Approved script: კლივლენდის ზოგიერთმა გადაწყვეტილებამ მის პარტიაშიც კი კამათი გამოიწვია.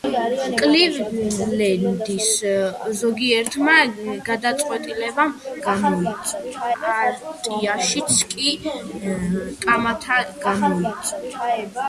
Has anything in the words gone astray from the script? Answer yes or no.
yes